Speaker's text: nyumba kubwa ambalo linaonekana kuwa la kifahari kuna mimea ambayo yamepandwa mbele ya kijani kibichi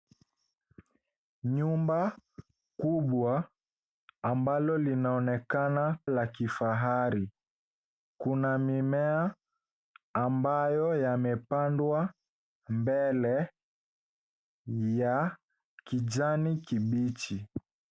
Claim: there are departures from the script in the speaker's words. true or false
true